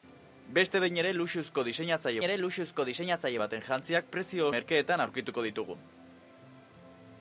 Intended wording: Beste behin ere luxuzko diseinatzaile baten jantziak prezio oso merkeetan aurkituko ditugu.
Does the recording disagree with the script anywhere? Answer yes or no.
yes